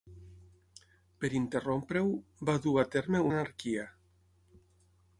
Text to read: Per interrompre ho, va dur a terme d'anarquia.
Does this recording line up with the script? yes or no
yes